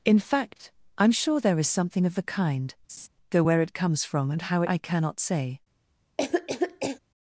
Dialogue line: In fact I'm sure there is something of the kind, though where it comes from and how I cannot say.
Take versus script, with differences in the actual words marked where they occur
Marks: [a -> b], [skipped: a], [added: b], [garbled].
In fact I'm sure there is something of the kind, though where it comes from and how I cannot say.